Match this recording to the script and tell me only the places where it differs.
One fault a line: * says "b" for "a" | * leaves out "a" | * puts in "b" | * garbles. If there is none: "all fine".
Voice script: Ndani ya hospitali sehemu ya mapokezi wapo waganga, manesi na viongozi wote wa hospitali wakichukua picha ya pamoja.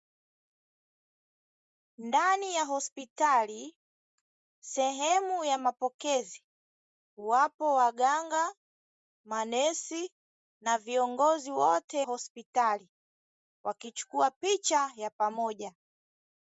* leaves out "wa"